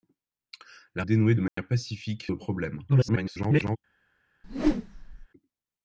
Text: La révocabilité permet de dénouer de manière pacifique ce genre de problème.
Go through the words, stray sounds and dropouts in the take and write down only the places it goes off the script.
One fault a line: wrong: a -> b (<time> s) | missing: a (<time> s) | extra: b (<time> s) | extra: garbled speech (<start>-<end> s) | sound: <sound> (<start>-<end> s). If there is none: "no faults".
missing: révocabilité permet de (1.0 s)
sound: dropout (1.5-1.6 s)
missing: ce genre (2.3 s)
extra: garbled speech (2.9-3.8 s)
sound: whoosh (4.4-5.3 s)